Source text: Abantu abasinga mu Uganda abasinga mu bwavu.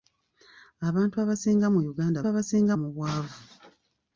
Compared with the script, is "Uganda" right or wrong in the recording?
right